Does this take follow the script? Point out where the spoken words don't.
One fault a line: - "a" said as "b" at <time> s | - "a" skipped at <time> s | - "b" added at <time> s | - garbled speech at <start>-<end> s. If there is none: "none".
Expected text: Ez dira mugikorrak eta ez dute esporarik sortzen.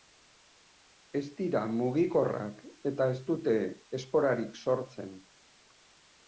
none